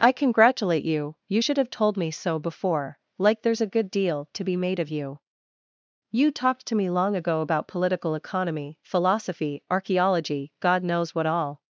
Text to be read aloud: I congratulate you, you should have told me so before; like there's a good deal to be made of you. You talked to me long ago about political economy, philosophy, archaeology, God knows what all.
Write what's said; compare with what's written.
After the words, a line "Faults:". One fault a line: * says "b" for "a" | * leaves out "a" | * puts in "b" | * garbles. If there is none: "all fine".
I congratulate you, you should have told me so before; like there's a good deal to be made of you. You talked to me long ago about political economy, philosophy, archaeology, God knows what all.
Faults:
all fine